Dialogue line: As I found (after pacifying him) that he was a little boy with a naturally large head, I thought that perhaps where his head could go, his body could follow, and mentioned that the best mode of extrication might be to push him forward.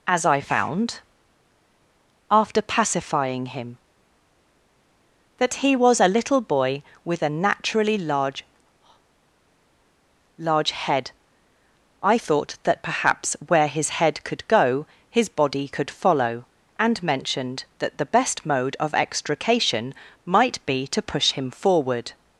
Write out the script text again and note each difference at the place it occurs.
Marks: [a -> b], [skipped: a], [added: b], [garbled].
As I found (after pacifying him) that he was a little boy with a naturally large [added: large] head, I thought that perhaps where his head could go, his body could follow, and mentioned that the best mode of extrication might be to push him forward.